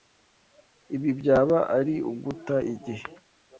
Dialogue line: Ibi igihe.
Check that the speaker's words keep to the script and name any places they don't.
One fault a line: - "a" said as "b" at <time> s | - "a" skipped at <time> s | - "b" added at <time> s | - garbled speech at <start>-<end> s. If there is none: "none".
- "byaba ari uguta" added at 1.2 s